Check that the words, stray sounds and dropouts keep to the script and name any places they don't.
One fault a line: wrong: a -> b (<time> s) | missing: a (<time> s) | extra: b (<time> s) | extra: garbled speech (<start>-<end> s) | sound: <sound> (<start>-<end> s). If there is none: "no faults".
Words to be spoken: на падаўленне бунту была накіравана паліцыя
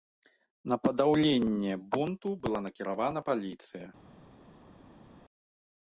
no faults